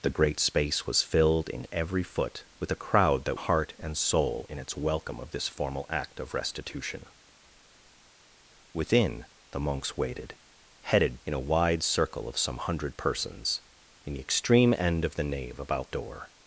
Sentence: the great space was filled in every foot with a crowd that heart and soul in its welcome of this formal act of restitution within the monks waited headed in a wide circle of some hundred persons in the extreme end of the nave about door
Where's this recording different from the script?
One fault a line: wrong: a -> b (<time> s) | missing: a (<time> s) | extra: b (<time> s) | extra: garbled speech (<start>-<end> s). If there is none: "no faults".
no faults